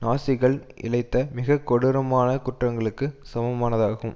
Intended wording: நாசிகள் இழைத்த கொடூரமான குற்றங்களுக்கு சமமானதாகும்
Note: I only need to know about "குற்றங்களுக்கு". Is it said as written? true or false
true